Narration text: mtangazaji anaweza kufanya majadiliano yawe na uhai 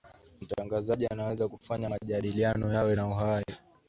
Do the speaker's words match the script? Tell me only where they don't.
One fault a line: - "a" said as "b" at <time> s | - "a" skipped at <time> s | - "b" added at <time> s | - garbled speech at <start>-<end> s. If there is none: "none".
none